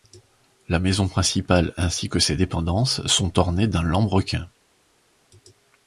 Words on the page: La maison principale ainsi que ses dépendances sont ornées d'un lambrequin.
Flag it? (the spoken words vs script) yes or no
no